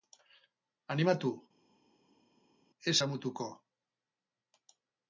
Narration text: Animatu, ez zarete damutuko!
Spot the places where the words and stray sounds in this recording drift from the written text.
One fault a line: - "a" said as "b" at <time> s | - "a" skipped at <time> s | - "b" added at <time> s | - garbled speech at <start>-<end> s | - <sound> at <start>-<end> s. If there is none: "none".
- "zarete" skipped at 3.0 s